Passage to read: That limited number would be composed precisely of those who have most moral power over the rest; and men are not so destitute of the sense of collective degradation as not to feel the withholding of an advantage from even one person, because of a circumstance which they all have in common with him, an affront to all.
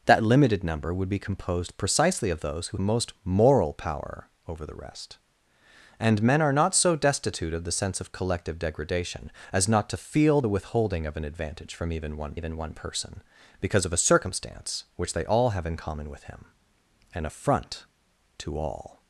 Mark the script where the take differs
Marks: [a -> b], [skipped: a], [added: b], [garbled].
That limited number would be composed precisely of those who [skipped: have] most moral power over the rest; and men are not so destitute of the sense of collective degradation as not to feel the withholding of an advantage from even one [added: even one] person, because of a circumstance which they all have in common with him, an affront to all.